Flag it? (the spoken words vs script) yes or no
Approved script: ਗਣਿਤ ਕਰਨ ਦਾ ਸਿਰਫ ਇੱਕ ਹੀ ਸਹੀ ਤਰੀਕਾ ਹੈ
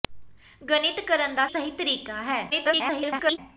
yes